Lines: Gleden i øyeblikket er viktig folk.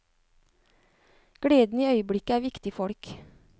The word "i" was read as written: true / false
true